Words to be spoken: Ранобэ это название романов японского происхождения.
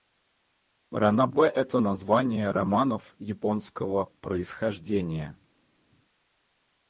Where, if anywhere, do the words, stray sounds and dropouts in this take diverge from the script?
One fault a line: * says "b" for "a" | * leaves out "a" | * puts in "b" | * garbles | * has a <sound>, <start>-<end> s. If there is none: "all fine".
all fine